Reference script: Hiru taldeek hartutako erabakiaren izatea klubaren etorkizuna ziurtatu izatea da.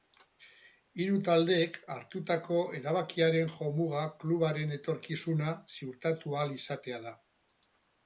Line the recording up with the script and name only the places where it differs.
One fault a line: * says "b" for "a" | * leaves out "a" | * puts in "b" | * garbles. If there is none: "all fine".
* says "jomuga" for "izatea"
* puts in "ahal"